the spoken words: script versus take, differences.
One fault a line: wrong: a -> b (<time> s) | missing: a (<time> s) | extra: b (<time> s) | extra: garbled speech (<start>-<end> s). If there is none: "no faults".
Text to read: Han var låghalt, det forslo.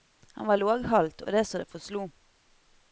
extra: og det så (1.2 s)